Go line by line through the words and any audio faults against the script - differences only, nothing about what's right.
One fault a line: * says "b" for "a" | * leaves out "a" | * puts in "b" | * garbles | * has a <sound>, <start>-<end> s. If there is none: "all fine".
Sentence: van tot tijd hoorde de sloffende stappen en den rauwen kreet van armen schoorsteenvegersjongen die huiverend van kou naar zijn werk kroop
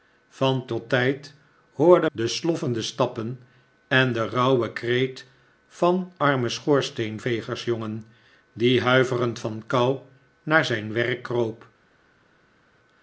all fine